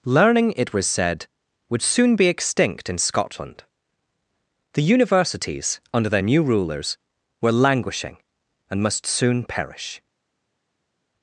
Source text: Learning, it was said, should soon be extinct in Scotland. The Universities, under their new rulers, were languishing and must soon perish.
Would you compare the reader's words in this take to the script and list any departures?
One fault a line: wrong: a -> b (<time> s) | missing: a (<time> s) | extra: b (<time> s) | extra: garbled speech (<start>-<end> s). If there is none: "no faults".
wrong: should -> would (1.7 s)